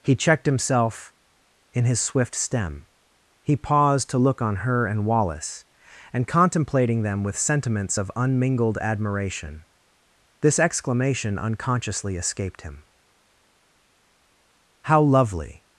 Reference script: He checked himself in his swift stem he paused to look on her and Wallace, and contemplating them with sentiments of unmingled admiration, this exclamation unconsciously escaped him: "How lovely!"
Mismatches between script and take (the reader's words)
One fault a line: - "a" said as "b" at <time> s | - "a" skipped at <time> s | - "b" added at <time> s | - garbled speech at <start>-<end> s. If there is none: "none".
none